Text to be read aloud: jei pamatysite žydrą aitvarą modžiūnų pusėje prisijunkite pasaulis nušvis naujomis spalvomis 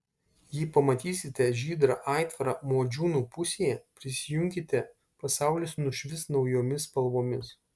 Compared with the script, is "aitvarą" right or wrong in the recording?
right